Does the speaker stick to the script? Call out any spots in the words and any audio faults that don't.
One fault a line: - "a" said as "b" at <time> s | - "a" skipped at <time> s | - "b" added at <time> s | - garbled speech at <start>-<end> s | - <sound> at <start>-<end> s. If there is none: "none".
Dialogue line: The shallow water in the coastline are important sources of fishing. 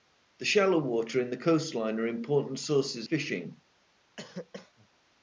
- "of" skipped at 3.1 s
- cough at 4.2-4.9 s